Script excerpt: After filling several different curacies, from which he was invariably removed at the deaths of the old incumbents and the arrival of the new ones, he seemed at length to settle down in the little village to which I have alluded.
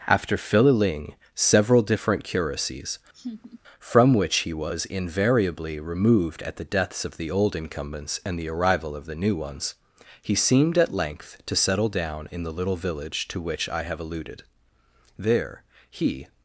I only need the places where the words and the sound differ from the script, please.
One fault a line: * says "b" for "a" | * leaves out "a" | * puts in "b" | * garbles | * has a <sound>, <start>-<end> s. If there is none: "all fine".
* has a laugh, 3.1-3.6 s
* puts in "There he"